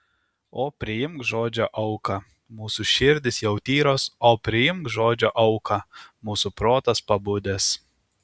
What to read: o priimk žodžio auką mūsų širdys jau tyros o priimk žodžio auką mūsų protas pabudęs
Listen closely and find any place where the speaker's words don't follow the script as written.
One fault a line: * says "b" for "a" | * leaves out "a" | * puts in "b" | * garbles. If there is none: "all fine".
all fine